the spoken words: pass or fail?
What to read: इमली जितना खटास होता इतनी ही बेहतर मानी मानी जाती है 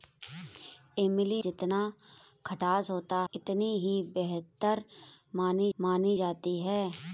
pass